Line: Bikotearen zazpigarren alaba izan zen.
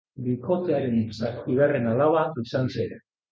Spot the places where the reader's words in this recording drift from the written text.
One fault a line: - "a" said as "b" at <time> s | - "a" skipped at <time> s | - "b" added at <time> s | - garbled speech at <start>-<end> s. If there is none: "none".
none